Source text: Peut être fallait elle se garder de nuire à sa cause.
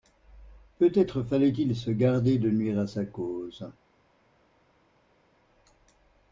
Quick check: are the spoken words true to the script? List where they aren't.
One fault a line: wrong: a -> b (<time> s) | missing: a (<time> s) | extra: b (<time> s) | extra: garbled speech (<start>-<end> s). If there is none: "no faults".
wrong: elle -> il (1.5 s)